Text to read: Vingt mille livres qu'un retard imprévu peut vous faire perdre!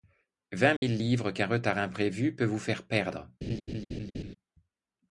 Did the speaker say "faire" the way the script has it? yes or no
yes